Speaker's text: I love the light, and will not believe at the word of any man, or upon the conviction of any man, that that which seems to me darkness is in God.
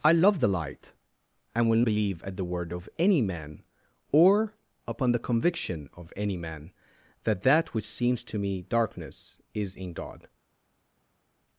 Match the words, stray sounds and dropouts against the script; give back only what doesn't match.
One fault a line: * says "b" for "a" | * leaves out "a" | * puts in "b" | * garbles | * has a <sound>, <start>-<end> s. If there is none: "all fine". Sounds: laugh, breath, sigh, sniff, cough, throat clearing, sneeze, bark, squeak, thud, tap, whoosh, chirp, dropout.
* leaves out "not"